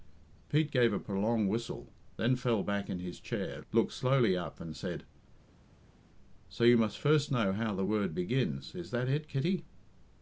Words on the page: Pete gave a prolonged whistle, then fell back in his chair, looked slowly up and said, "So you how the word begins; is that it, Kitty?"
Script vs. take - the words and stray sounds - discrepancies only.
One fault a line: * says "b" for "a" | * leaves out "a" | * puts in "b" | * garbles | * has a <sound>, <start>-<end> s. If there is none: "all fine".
* puts in "must first know"